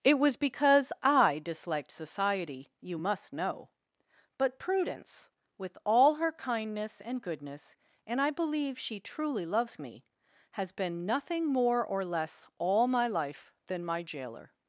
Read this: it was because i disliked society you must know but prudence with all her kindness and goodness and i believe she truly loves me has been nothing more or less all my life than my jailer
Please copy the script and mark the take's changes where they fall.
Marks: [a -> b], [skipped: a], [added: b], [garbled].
it was because i disliked society you must know but prudence with all her kindness and goodness and i believe she truly loves me has been nothing more or less all my life than my jailer